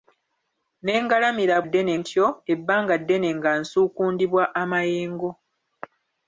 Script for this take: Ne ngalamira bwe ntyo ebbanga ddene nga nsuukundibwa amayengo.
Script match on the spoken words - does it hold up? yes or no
no